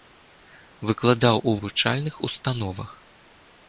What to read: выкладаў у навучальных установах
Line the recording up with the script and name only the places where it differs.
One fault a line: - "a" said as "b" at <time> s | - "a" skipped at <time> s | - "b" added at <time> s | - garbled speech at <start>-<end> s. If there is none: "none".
none